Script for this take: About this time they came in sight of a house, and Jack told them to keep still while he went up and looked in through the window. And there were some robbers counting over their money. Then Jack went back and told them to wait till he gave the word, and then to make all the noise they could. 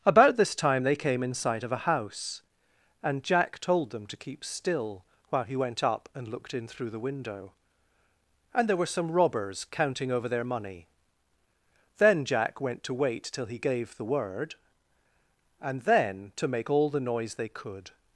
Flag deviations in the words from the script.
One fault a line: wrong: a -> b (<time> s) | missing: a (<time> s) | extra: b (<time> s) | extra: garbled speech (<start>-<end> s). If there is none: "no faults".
missing: back and told them (12.8 s)